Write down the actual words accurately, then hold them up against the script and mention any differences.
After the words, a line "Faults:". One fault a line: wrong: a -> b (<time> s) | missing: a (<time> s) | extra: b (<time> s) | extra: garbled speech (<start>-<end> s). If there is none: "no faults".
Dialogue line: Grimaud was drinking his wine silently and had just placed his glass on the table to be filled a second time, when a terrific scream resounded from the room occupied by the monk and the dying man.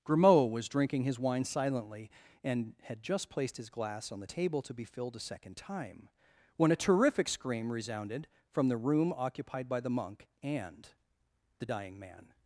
Grimaud was drinking his wine silently and had just placed his glass on the table to be filled a second time, when a terrific scream resounded from the room occupied by the monk and the dying man.
Faults:
no faults